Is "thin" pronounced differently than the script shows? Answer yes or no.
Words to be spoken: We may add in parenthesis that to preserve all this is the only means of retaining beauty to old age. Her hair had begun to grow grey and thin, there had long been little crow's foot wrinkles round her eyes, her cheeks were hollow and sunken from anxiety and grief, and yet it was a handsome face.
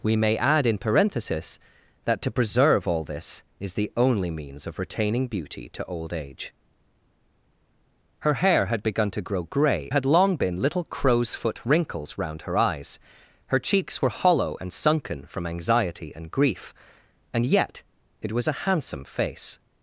yes